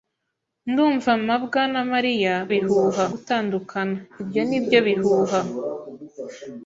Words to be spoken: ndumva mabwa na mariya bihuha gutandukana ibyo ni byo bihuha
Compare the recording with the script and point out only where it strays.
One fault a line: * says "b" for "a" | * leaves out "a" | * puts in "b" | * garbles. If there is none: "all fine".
all fine